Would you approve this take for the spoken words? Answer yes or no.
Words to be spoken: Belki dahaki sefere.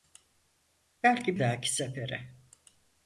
yes